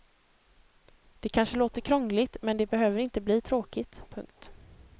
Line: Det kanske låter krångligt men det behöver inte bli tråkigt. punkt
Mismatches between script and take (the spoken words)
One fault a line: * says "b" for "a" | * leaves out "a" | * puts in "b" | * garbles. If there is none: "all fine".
all fine